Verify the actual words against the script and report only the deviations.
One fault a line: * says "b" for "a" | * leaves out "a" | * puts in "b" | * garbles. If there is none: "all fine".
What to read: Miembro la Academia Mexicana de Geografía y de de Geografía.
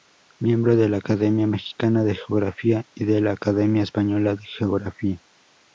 * puts in "de"
* puts in "la Academia española"